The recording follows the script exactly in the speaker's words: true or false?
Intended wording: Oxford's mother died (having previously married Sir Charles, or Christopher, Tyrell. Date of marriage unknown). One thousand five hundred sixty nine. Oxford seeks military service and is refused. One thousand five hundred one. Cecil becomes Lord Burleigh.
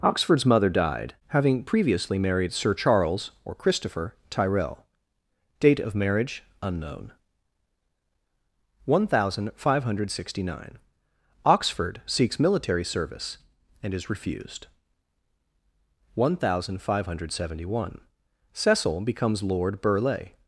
false